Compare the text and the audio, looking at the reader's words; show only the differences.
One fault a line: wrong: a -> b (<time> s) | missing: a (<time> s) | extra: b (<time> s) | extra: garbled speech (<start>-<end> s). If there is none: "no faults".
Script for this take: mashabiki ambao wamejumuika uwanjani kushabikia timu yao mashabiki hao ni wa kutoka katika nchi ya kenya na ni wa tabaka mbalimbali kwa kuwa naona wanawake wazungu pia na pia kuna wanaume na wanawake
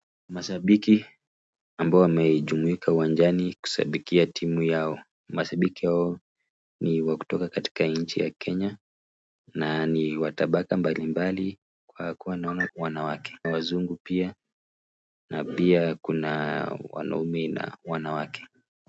no faults